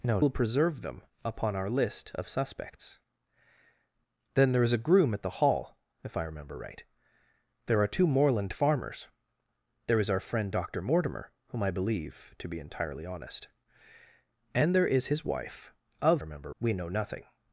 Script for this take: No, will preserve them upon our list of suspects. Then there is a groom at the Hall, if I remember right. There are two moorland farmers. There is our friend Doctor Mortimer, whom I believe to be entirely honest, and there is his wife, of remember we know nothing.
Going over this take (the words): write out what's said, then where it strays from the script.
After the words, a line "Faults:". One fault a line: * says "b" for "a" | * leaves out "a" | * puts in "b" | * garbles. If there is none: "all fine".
No, will preserve them upon our list of suspects. Then there is a groom at the Hall, if I remember right. There are two moorland farmers. There is our friend Doctor Mortimer, whom I believe to be entirely honest, and there is his wife, of remember we know nothing.
Faults:
all fine